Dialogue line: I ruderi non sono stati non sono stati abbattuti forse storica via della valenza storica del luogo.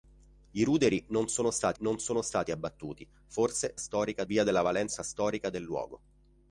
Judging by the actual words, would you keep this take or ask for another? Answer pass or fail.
pass